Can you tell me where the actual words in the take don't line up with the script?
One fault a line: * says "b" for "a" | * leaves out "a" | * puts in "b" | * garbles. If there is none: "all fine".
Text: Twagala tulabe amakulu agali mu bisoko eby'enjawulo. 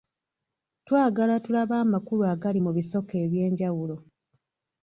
all fine